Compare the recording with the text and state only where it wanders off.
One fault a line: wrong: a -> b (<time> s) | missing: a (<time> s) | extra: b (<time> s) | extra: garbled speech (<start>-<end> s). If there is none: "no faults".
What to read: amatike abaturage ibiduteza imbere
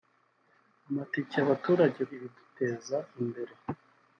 no faults